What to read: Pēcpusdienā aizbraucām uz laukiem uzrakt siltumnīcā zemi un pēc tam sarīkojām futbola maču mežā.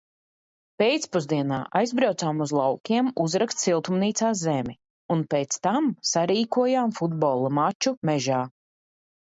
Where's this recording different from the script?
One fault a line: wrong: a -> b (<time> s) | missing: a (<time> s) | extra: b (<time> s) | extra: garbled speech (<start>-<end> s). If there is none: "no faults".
no faults